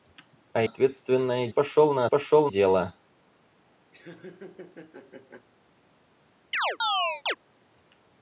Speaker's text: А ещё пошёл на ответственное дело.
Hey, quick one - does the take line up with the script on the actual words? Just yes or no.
no